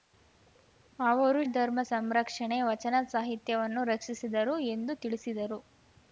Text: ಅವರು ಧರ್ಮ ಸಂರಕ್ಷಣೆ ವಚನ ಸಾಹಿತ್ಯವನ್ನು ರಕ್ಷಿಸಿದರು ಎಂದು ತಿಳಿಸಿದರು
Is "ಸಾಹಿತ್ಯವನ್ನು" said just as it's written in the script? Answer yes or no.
yes